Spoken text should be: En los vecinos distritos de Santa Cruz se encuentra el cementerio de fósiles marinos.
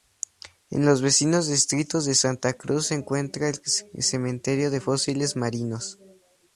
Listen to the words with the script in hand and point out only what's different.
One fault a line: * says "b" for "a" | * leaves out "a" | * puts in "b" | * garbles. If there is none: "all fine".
all fine